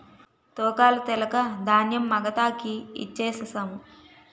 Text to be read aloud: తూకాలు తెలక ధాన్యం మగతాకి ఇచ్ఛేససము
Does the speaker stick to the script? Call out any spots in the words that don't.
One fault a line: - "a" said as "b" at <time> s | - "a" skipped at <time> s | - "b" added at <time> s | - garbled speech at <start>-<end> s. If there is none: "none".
none